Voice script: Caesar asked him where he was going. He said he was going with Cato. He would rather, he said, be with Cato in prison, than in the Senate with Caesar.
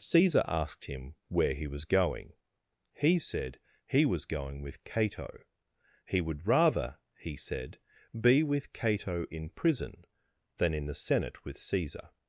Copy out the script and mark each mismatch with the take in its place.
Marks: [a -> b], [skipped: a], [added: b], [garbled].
Caesar asked him where he was going. He said he was going with Cato. He would rather, he said, be with Cato in prison, than in the Senate with Caesar.